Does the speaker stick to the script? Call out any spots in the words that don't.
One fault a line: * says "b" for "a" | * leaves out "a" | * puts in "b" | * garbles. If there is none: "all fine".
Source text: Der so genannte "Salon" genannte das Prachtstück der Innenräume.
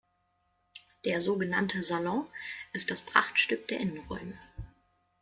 * says "ist" for "genannte"